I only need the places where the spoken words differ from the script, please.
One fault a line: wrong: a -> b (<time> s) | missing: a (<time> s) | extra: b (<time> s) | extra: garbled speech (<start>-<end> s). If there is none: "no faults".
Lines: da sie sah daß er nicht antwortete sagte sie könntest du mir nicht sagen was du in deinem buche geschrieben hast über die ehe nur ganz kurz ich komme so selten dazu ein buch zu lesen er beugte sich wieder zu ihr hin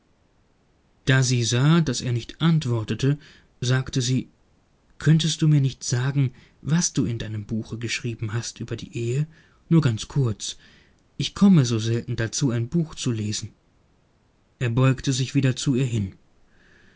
no faults